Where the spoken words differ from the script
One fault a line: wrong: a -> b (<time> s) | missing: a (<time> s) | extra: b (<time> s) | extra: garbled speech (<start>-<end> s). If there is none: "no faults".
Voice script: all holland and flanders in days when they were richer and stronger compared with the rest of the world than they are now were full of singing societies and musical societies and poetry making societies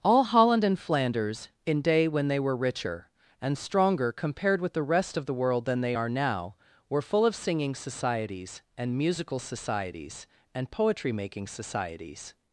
wrong: days -> day (1.8 s)